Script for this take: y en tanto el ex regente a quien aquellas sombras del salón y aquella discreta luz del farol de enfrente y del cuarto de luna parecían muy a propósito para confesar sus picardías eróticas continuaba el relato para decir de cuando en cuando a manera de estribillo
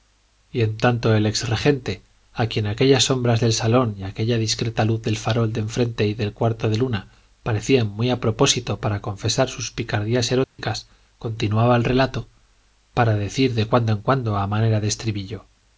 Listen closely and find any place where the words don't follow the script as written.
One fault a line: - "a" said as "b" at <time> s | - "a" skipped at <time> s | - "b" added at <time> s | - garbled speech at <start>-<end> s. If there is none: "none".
none